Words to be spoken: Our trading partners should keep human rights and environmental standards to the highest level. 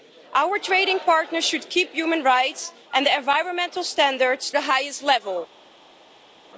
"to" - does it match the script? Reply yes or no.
no